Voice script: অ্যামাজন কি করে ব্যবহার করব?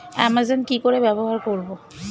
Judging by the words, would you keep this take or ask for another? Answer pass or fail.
pass